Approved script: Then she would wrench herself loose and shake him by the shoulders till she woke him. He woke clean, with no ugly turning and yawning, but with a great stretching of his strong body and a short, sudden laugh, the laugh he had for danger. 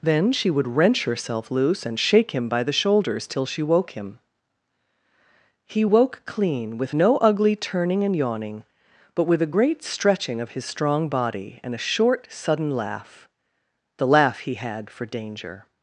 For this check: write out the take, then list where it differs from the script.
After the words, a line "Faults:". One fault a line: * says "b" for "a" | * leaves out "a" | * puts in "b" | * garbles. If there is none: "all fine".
Then she would wrench herself loose and shake him by the shoulders till she woke him. He woke clean, with no ugly turning and yawning, but with a great stretching of his strong body and a short, sudden laugh, the laugh he had for danger.
Faults:
all fine